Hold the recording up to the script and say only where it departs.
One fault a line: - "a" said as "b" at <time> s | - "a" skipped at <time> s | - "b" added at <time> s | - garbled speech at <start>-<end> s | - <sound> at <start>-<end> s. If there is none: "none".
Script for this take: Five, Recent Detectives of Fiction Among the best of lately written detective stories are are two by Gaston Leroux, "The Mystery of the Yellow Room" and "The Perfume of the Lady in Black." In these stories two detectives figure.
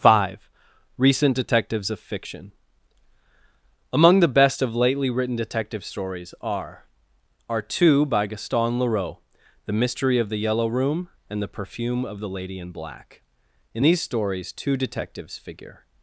none